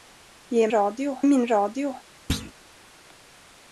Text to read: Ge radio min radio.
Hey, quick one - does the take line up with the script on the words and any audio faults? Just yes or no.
no